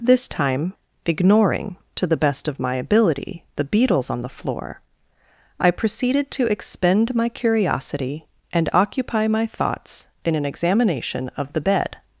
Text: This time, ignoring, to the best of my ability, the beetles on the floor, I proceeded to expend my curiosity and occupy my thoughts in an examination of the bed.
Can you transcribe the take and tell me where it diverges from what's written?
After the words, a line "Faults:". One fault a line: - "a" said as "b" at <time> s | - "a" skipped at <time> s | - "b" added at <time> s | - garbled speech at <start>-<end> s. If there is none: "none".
This time, ignoring, to the best of my ability, the beetles on the floor, I proceeded to expend my curiosity and occupy my thoughts in an examination of the bed.
Faults:
none